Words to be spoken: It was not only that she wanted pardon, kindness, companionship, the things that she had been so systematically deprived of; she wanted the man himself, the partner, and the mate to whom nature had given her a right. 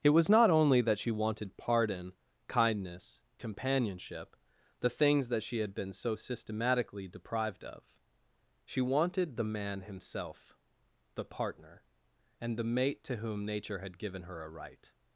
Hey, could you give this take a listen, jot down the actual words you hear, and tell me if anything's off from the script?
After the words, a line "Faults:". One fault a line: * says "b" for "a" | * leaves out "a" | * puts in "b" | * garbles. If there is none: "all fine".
It was not only that she wanted pardon, kindness, companionship, the things that she had been so systematically deprived of; she wanted the man himself, the partner, and the mate to whom nature had given her a right.
Faults:
all fine